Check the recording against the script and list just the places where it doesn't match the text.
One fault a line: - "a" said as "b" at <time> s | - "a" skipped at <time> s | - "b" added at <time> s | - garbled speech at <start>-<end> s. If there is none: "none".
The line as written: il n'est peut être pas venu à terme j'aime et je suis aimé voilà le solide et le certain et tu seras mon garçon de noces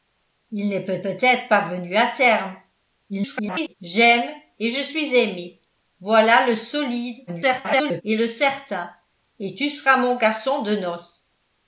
- "peut" added at 1.0 s
- garbled speech at 3.1-3.7 s
- garbled speech at 7.3-8.0 s